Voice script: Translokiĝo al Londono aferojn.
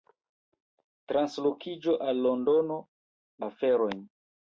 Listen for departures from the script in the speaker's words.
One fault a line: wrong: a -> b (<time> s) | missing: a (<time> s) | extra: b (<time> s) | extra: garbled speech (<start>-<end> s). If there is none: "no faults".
no faults